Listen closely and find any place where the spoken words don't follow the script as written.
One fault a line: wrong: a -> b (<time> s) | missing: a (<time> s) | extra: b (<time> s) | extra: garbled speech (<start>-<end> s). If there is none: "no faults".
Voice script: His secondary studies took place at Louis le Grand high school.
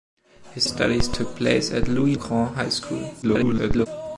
missing: secondary (0.7 s)
missing: le (2.1 s)
extra: garbled speech (3.2-3.9 s)